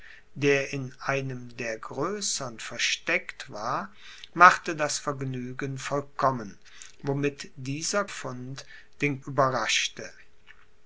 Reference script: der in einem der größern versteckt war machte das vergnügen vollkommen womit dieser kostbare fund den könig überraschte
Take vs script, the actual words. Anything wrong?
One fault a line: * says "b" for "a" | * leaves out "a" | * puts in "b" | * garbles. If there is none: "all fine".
* leaves out "kostbare"
* leaves out "könig"